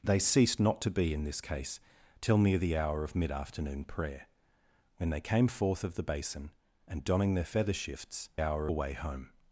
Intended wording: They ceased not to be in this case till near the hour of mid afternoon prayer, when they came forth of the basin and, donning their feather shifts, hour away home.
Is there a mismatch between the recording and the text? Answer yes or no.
no